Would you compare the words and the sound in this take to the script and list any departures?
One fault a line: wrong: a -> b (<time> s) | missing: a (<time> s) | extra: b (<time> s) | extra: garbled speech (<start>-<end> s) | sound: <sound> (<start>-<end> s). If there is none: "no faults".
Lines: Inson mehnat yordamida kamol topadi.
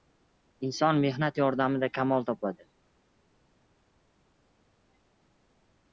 no faults